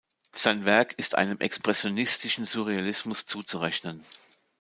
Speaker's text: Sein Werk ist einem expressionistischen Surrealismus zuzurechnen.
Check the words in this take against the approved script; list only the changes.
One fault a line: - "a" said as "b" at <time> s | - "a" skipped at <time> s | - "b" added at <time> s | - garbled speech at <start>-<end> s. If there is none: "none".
none